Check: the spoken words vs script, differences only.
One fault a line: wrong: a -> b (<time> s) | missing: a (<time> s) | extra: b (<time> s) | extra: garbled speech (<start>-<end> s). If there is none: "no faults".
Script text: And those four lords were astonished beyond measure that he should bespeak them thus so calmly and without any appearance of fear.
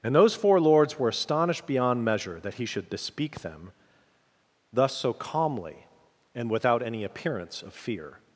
no faults